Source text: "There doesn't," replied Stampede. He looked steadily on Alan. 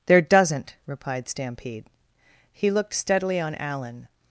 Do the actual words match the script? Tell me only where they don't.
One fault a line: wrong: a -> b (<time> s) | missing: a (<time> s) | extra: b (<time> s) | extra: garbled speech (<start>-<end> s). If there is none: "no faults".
no faults